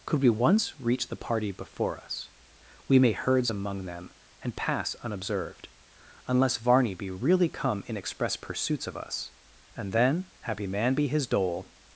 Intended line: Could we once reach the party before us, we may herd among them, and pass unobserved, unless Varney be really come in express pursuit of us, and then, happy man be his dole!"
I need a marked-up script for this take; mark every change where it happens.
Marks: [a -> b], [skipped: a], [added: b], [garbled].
Could we once reach the party before us, we may [herd -> herds] among them, and pass unobserved, unless Varney be really come in express [pursuit -> pursuits] of us, and then, happy man be his dole!"